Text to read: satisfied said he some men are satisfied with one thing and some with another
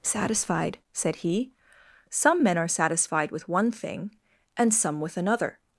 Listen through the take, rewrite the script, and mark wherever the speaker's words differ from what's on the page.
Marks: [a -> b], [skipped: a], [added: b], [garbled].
satisfied said he some men are satisfied with one thing and some with another